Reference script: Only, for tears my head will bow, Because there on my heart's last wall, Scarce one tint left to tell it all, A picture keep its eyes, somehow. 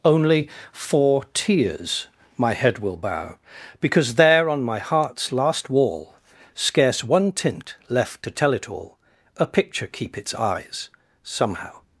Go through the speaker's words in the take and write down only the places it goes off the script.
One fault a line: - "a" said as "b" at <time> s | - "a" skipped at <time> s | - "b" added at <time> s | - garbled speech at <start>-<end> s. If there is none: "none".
none